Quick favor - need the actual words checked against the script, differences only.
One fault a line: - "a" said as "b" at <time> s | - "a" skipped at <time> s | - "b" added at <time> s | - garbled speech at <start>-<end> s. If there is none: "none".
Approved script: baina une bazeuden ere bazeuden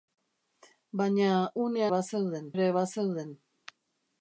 none